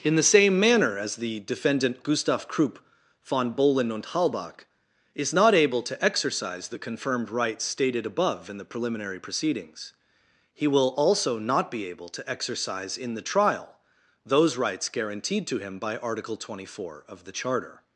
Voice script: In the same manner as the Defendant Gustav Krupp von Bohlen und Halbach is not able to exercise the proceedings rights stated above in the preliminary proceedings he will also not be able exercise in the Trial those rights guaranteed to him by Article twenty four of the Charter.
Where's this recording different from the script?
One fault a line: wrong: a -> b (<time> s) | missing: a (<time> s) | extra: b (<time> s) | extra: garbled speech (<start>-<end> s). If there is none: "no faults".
wrong: proceedings -> confirmed (6.8 s)
extra: to (12.1 s)